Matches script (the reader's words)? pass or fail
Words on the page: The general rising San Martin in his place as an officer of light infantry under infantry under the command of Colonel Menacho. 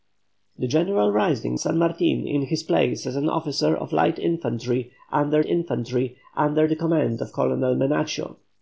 pass